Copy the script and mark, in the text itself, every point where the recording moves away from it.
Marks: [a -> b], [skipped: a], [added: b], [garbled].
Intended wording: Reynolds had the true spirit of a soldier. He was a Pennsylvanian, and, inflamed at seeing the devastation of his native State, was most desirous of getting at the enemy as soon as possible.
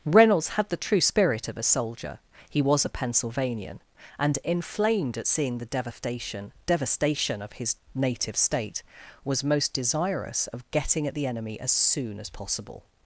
Reynolds had the true spirit of a soldier. He was a Pennsylvanian, and, inflamed at seeing the devastation [added: devastation] of his native State, was most desirous of getting at the enemy as soon as possible.